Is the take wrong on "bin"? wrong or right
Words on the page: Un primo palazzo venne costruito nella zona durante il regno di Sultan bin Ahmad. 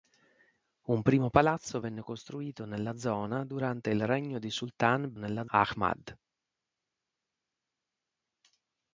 wrong